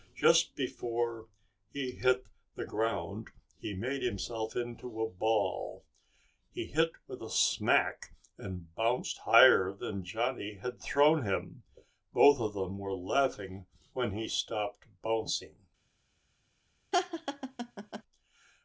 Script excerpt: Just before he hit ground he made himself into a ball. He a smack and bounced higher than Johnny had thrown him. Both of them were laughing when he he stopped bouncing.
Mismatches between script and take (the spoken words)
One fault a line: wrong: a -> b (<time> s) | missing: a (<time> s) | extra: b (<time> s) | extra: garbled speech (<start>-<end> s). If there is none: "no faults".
extra: the (2.5 s)
extra: hit with (6.7 s)
missing: he (14.3 s)